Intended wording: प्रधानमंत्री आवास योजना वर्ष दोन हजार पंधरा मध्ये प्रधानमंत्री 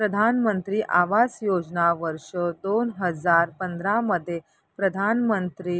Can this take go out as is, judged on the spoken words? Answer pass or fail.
pass